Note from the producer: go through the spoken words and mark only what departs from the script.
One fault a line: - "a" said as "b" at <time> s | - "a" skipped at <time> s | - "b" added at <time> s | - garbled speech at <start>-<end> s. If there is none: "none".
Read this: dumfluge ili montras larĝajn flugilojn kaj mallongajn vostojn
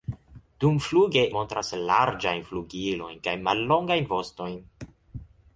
- "ili" skipped at 1.2 s